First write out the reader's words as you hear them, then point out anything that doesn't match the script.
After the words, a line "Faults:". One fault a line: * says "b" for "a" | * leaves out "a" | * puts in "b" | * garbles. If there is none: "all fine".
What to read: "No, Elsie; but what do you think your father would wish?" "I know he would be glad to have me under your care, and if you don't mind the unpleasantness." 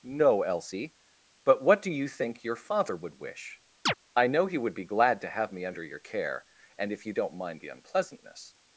"No, Elsie; but what do you think your father would wish?" "I know he would be glad to have me under your care, and if you don't mind the unpleasantness."
Faults:
all fine